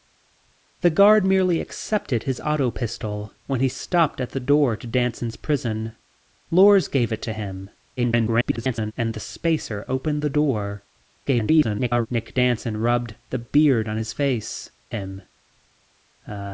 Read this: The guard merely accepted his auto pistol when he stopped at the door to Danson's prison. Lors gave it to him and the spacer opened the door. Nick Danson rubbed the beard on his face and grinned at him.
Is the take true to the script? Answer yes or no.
no